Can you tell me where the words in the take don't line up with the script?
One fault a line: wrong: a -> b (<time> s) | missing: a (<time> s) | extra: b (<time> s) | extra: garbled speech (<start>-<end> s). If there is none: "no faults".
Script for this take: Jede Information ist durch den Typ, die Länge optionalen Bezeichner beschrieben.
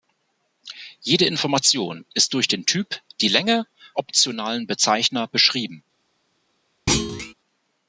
no faults